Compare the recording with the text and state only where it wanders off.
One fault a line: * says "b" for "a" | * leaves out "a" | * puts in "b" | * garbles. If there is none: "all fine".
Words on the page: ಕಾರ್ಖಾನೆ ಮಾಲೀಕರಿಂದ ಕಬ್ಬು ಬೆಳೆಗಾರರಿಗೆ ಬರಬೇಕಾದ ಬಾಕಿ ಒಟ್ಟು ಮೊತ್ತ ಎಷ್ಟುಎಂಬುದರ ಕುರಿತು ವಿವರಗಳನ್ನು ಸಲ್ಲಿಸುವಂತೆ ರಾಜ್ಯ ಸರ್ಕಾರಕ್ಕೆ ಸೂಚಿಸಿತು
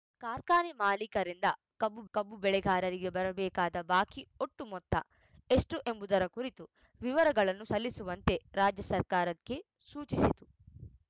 * puts in "ಕಬ್ಬು"